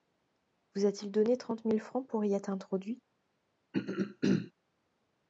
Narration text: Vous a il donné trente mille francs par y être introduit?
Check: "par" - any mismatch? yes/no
yes